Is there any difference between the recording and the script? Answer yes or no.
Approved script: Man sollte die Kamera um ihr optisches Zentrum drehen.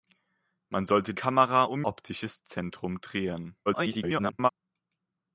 yes